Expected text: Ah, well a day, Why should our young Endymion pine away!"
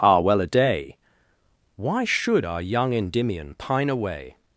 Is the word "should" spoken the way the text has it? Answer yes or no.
yes